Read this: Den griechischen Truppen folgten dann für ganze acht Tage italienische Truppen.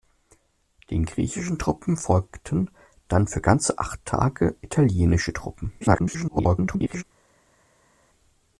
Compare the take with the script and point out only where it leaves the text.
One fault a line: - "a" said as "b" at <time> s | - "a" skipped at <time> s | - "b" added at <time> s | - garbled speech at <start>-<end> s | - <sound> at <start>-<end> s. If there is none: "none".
- garbled speech at 5.8-7.0 s